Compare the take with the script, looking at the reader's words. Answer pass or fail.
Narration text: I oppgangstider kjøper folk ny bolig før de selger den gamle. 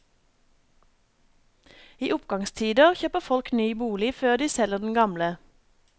pass